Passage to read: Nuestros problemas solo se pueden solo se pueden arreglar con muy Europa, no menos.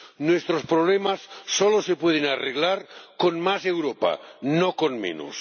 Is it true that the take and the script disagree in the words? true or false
true